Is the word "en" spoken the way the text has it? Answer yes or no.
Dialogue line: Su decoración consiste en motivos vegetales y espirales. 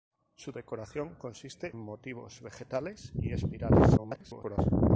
no